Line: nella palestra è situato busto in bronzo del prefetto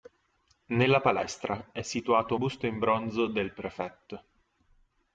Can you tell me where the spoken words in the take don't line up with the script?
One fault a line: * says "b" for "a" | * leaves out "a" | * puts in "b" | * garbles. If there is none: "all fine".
all fine